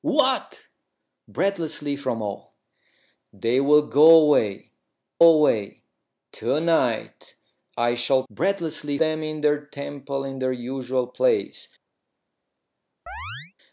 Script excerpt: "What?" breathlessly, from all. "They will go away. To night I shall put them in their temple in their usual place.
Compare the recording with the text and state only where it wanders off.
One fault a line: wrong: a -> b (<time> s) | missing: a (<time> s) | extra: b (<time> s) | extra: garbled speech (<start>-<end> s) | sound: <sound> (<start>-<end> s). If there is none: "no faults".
extra: away (5.2 s)
wrong: put -> breathlessly (8.3 s)
sound: chirp (13.1-13.5 s)